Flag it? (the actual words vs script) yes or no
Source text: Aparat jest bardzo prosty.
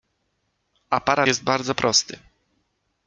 no